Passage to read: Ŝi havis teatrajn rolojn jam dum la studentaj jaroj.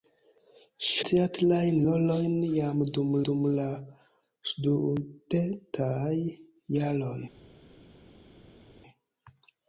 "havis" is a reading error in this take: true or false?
true